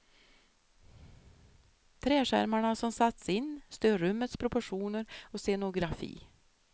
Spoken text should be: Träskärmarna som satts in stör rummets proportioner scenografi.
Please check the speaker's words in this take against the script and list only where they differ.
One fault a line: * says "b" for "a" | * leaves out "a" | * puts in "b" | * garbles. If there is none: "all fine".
* puts in "och"